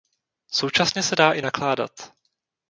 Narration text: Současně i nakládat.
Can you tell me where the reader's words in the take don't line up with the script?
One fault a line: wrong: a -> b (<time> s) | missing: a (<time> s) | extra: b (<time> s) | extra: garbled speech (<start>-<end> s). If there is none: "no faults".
extra: se dá (1.0 s)